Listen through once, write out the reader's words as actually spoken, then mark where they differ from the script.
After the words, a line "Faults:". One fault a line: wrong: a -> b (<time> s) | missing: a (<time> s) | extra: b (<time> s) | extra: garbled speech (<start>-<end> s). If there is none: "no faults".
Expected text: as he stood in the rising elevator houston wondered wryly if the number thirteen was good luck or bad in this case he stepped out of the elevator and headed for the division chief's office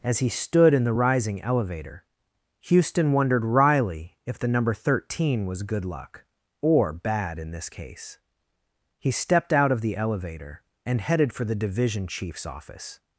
as he stood in the rising elevator houston wondered wryly if the number thirteen was good luck or bad in this case he stepped out of the elevator and headed for the division chief's office
Faults:
no faults